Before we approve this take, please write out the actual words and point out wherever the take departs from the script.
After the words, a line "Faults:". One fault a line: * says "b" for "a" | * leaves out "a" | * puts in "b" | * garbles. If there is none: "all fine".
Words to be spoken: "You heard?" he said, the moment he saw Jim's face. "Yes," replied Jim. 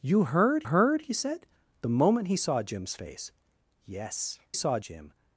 "You heard heard?" he said, the moment he saw Jim's face. "Yes," saw Jim.
Faults:
* puts in "heard"
* says "saw" for "replied"